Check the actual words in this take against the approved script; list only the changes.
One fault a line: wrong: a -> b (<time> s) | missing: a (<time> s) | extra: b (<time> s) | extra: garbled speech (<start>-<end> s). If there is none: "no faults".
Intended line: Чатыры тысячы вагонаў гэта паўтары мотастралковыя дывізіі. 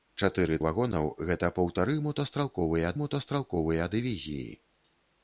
missing: тысячы (0.6 s)
extra: мотастралковыя (3.0 s)